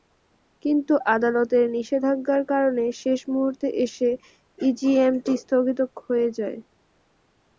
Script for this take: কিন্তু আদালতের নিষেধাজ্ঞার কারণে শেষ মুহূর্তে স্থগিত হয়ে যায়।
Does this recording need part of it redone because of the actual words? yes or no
yes